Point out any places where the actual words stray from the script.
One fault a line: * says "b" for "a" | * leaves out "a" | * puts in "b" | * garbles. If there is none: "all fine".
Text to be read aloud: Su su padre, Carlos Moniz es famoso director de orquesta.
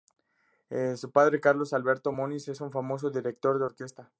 * leaves out "su"
* puts in "Alberto"
* puts in "un"